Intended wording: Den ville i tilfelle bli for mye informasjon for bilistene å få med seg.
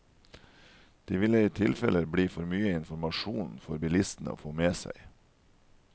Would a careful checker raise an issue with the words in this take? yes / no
yes